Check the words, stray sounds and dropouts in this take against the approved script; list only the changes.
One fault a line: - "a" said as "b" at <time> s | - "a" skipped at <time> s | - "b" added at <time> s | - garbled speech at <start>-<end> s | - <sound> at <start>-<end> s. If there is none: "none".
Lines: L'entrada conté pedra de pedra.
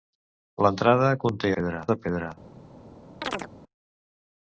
- chirp at 3.2-3.5 s